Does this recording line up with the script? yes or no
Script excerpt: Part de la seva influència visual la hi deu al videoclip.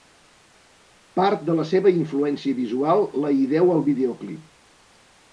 yes